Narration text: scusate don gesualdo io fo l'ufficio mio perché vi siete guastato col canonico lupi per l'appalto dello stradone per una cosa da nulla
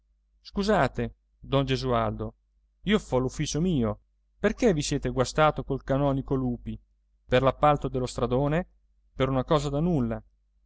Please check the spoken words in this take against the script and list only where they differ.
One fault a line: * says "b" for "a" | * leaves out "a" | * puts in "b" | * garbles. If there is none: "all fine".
all fine